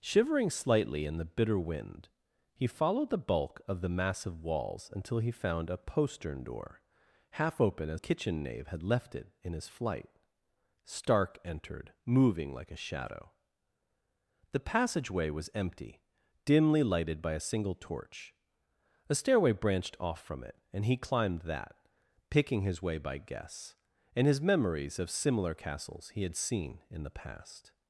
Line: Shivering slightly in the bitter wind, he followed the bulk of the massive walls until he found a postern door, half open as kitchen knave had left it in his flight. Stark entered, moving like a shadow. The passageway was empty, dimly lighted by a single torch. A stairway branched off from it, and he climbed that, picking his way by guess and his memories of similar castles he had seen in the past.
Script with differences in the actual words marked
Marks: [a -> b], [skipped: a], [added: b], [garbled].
Shivering slightly in the bitter wind, he followed the bulk of the massive walls until he found a postern door, half open as kitchen knave had left it in his flight. Stark entered, moving like a shadow. The passageway was empty, dimly lighted by a single torch. A stairway branched off from it, and he climbed that, picking his way by guess and his memories of similar castles he had seen in the past.